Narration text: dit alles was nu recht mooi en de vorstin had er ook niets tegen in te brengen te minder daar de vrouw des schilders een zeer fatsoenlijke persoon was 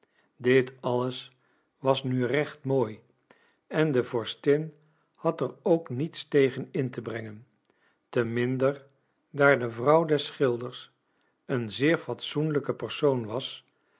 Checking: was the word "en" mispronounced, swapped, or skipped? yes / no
no